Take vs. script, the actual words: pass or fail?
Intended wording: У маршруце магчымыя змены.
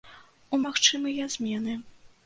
fail